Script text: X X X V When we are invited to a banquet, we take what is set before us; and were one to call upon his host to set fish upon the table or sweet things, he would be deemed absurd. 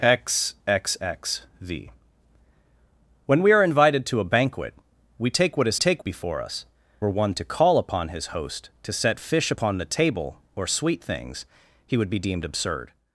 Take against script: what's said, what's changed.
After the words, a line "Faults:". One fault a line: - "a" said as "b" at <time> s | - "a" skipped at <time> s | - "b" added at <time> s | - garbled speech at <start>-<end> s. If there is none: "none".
X X X V When we are invited to a banquet, we take what is take before us; were one to call upon his host to set fish upon the table or sweet things, he would be deemed absurd.
Faults:
- "set" said as "take" at 5.8 s
- "and" skipped at 6.7 s